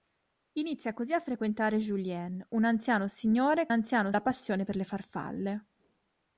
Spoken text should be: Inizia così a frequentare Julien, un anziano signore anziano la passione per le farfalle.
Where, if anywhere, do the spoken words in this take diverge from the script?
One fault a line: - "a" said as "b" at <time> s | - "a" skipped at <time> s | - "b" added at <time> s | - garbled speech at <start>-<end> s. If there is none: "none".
none